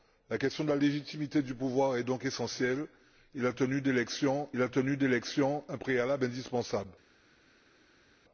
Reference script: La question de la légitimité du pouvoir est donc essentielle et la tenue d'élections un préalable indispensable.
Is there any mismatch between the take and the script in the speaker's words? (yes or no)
yes